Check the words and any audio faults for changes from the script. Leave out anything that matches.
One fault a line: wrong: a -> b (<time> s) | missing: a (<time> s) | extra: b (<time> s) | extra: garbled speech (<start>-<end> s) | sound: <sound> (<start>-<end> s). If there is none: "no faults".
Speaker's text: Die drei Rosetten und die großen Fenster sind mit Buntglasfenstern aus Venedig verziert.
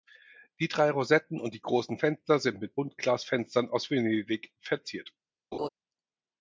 sound: laugh (5.5-5.7 s)